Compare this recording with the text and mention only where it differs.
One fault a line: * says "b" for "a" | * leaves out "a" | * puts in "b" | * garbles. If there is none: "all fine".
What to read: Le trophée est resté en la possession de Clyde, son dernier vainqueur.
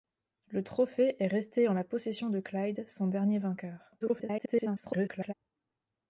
* garbles